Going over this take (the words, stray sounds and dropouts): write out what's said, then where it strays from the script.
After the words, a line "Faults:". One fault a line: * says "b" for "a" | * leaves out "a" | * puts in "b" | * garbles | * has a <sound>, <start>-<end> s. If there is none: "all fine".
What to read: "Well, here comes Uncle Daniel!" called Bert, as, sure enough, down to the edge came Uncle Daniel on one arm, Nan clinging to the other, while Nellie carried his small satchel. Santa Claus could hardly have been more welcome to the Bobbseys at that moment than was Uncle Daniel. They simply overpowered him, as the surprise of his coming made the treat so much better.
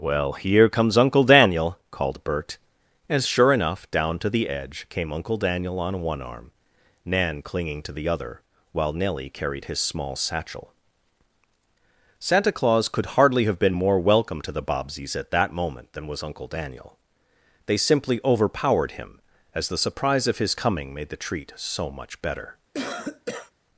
"Well, here comes Uncle Daniel!" called Bert, as, sure enough, down to the edge came Uncle Daniel on one arm, Nan clinging to the other, while Nellie carried his small satchel. Santa Claus could hardly have been more welcome to the Bobbseys at that moment than was Uncle Daniel. They simply overpowered him, as the surprise of his coming made the treat so much better.
Faults:
* has a cough, 22.7-23.5 s